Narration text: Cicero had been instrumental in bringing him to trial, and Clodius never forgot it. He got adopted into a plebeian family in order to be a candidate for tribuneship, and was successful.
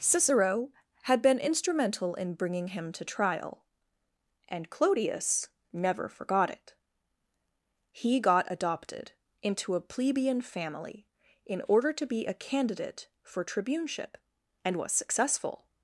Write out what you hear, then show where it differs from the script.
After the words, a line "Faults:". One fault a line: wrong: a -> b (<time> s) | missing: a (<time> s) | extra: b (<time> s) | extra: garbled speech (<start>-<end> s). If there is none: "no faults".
Cicero had been instrumental in bringing him to trial, and Clodius never forgot it. He got adopted into a plebeian family in order to be a candidate for tribuneship, and was successful.
Faults:
no faults